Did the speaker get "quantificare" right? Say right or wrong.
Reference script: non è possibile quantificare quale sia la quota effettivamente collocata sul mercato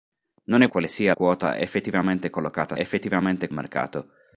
wrong